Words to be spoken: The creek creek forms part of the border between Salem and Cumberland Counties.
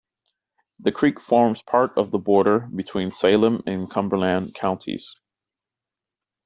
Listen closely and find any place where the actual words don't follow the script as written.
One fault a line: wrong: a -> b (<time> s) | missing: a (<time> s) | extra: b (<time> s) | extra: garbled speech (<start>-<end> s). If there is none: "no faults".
missing: creek (1.2 s)